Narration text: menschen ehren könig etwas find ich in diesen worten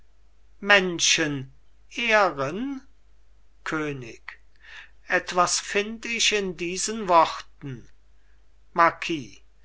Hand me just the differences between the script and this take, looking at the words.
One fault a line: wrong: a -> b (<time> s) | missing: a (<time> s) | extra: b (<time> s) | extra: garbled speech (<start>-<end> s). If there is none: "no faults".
no faults